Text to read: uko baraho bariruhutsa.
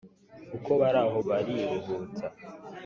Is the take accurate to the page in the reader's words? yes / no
yes